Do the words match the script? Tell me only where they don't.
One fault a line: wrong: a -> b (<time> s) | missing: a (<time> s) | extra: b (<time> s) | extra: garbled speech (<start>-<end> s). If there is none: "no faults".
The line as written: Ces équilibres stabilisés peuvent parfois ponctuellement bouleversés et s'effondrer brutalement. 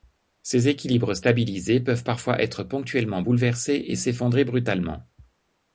extra: être (2.4 s)